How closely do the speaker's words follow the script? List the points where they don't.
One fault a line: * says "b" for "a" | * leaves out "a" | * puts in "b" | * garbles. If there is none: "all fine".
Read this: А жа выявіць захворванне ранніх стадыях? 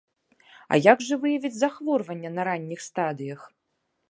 * puts in "як"
* puts in "на"